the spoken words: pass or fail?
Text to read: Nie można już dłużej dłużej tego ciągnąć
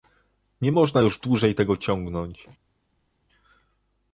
fail